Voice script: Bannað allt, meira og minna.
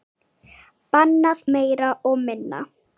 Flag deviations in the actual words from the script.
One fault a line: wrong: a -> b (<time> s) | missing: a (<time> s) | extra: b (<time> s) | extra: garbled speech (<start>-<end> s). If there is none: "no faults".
missing: allt (1.4 s)